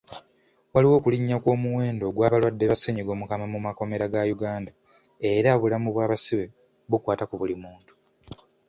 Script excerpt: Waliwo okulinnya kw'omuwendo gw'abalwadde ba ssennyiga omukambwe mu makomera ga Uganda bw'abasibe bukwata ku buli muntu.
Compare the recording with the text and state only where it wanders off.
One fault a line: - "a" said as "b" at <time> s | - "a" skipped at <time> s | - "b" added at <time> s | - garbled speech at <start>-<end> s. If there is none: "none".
- "era obulamu" added at 5.3 s